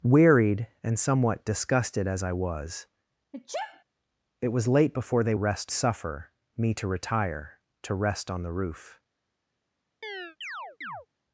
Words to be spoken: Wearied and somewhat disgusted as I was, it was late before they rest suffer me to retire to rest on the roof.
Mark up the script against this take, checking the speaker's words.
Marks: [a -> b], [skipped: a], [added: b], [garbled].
Wearied and somewhat disgusted as I was, it was late before they rest suffer me to retire to rest on the roof.